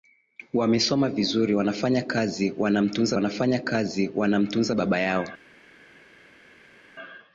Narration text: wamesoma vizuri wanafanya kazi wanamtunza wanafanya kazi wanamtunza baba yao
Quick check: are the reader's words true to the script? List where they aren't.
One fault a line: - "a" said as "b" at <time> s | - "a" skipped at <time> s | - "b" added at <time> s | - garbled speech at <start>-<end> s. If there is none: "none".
none